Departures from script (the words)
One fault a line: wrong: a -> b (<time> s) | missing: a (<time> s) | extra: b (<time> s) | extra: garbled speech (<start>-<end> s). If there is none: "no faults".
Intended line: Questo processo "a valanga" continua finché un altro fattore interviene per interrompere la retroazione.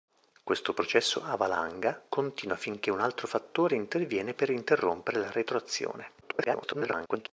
extra: garbled speech (6.2-7.3 s)